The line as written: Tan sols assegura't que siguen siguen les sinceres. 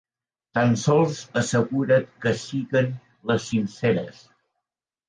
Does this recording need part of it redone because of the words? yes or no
yes